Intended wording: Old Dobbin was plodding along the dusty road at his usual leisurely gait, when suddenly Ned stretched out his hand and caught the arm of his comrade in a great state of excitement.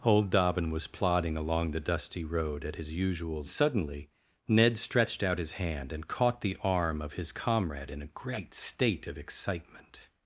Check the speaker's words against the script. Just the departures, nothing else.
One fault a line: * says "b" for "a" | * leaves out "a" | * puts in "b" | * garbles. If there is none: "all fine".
* leaves out "leisurely gait when"